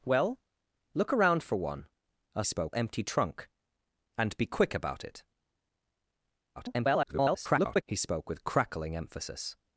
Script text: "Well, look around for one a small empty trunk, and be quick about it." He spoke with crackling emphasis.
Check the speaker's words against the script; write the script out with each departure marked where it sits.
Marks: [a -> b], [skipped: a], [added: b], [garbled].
"Well, look around for one a [small -> spoke] empty trunk, and be quick about it." [garbled] He spoke with crackling emphasis.